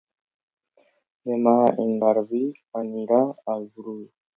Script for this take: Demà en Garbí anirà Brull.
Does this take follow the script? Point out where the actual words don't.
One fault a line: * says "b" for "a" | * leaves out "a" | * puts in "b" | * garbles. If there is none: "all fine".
* puts in "al"